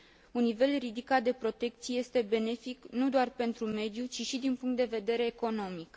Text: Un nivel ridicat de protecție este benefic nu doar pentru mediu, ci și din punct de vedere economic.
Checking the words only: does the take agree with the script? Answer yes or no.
yes